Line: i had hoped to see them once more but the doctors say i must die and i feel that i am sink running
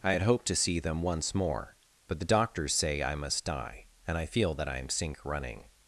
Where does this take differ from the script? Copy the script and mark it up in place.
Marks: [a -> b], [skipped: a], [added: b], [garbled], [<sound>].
i had hoped to see them once more but the doctors say i must die and i feel that i am sink running